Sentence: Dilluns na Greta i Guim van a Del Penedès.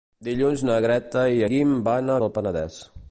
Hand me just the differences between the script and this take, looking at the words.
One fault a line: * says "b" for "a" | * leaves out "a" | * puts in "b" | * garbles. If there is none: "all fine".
all fine